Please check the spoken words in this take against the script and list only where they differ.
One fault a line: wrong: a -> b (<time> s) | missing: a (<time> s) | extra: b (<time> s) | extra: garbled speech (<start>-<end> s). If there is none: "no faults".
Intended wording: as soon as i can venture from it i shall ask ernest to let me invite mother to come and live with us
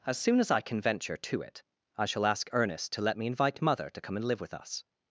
wrong: from -> to (1.1 s)